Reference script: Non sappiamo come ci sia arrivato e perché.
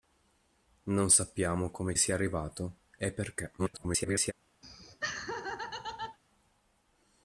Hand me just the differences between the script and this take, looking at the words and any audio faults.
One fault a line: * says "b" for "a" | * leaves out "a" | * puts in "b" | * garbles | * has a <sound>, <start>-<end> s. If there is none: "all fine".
* leaves out "ci"
* garbles
* has a laugh, 4.6-6.2 s